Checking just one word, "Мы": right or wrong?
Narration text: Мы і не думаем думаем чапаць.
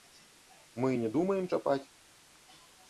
right